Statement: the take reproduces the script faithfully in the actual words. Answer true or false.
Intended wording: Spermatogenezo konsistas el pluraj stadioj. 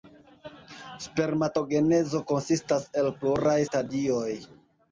true